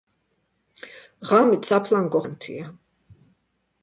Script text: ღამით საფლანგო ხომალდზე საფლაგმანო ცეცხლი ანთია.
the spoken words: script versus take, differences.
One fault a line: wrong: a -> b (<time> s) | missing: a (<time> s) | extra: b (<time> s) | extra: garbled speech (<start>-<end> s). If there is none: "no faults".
missing: ხომალდზე საფლაგმანო ცეცხლი (2.2 s)